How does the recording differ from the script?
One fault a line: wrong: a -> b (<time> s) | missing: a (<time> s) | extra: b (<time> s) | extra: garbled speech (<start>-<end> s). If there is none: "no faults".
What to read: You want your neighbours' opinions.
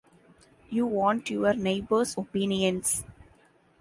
no faults